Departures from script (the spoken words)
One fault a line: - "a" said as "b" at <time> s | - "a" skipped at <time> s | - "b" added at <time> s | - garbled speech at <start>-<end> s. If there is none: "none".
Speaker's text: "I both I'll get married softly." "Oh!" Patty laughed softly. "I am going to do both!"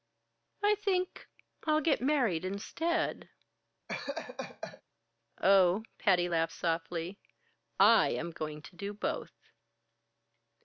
- "both" said as "think" at 0.7 s
- "softly" said as "instead" at 2.4 s